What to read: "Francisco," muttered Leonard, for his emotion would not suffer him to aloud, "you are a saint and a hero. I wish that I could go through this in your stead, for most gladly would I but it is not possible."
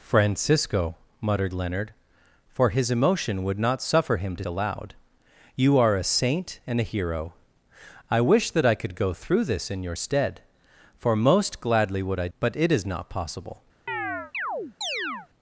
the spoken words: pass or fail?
pass